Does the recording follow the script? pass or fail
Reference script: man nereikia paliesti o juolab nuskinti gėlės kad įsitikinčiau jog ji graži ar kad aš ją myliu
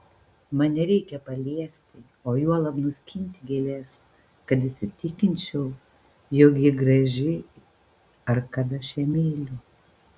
pass